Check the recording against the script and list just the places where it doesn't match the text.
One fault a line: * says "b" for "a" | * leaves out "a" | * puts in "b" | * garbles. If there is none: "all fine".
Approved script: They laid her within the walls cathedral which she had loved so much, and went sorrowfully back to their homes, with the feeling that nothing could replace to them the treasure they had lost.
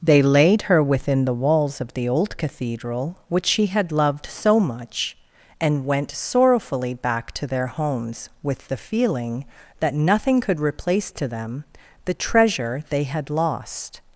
* puts in "of the old"